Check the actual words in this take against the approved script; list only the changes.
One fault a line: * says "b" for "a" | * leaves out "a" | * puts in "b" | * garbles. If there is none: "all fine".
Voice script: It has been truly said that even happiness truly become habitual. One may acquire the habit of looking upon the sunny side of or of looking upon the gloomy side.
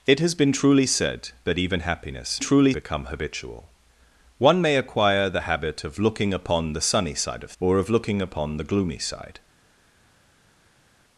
all fine